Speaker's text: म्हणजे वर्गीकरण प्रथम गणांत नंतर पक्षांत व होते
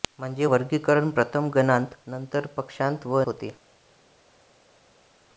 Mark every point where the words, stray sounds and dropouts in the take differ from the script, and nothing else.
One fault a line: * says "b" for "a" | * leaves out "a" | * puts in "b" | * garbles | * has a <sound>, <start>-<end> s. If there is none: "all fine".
all fine